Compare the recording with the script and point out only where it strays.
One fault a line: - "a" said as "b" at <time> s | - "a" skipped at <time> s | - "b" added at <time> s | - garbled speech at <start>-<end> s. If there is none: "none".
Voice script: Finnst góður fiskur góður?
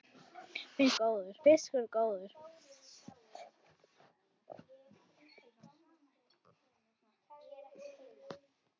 none